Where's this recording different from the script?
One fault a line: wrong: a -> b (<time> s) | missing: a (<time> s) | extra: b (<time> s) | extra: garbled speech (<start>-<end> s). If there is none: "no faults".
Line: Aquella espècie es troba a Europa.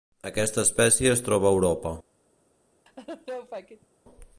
wrong: Aquella -> Aquesta (0.3 s)